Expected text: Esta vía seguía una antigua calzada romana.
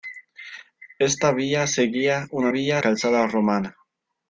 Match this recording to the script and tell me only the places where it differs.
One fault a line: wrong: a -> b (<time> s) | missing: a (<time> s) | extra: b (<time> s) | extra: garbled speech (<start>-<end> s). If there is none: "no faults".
wrong: antigua -> vía (2.5 s)